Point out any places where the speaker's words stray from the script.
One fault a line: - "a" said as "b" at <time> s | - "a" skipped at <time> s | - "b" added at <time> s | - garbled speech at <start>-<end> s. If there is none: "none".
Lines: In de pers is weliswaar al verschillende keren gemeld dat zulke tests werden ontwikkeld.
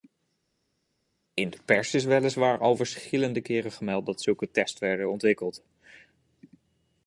none